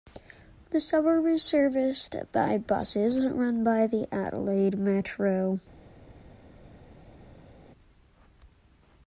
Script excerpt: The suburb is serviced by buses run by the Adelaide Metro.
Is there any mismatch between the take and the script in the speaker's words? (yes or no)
no